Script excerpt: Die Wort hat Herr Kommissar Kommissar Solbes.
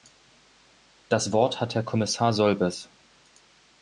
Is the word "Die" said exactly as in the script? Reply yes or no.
no